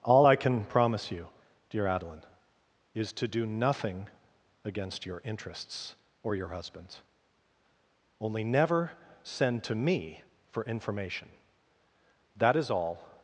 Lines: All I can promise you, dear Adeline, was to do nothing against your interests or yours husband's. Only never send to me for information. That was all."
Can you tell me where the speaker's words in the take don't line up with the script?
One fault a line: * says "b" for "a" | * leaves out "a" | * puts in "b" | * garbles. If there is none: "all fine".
* says "is" for "was"
* says "your" for "yours"
* says "is" for "was"